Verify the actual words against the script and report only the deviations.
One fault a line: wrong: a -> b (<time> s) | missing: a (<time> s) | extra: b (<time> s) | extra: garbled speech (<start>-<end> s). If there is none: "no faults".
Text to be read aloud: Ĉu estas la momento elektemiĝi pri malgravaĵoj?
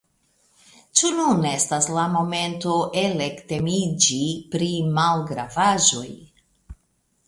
extra: nun (1.2 s)